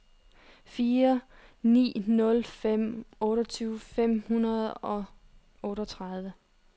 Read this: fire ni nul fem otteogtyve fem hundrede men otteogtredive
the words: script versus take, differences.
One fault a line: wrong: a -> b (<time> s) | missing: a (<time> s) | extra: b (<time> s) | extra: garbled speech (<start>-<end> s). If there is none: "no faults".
wrong: men -> og (4.7 s)